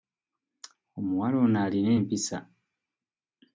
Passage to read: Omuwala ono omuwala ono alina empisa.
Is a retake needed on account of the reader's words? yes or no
yes